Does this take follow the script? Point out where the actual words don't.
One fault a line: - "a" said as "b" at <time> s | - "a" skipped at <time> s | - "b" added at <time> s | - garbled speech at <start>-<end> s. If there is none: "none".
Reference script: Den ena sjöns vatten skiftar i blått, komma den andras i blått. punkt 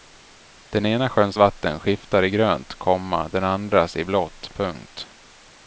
- "blått" said as "grönt" at 2.3 s